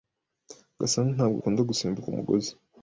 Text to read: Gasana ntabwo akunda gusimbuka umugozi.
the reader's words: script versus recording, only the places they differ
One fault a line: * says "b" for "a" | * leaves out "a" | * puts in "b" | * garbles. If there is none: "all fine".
all fine